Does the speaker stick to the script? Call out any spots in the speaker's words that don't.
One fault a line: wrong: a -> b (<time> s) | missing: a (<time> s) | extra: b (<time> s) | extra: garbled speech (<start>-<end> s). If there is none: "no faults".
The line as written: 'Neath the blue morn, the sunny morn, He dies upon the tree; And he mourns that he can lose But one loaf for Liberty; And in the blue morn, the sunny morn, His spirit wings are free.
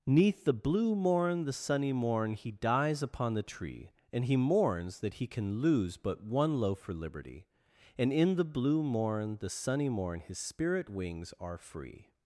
no faults